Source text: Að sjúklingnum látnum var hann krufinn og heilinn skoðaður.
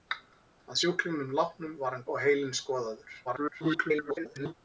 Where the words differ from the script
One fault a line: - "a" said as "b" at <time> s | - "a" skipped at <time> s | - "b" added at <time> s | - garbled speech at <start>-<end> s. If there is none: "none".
- "krufinn" skipped at 2.1 s
- garbled speech at 3.2-4.5 s